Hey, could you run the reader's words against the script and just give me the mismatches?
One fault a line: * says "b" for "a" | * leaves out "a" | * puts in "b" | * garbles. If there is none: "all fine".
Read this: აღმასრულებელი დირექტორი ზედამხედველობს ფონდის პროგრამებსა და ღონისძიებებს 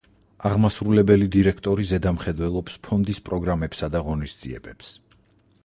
all fine